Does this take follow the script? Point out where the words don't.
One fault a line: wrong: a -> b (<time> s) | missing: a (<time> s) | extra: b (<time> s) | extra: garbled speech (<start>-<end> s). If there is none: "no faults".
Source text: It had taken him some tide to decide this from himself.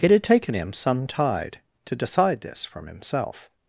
no faults